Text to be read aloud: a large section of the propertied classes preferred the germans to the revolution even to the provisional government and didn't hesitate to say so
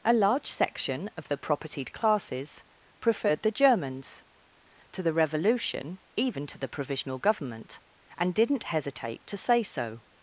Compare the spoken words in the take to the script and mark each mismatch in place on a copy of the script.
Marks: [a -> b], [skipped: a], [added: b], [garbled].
a large section of the propertied classes preferred the germans to the revolution even to the provisional government and didn't hesitate to say so